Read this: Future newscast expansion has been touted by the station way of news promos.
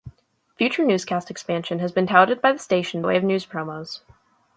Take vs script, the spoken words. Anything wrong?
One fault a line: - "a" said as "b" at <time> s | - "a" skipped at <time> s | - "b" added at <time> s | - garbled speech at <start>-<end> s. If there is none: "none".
none